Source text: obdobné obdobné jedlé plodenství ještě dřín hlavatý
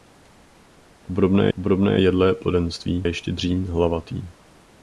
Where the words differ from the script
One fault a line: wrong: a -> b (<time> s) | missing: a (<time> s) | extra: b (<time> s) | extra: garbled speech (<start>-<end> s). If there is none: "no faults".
no faults